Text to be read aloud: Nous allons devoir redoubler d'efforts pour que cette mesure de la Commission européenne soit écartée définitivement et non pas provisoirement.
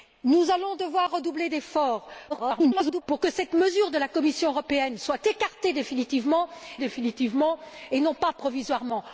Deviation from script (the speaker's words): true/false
true